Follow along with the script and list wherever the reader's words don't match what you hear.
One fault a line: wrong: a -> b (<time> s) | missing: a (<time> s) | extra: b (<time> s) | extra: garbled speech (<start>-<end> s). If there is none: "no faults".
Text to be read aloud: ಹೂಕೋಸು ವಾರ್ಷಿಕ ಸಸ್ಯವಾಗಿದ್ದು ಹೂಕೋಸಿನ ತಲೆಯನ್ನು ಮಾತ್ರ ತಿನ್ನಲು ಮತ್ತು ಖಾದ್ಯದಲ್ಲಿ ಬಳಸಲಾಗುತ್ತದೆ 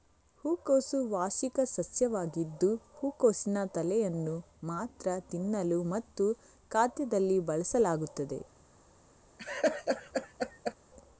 no faults